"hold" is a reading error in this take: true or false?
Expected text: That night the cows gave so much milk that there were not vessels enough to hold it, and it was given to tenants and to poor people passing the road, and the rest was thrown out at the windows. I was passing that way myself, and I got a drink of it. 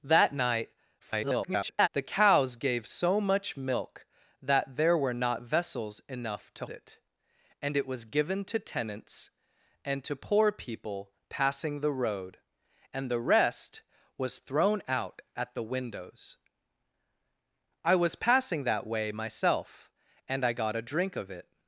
true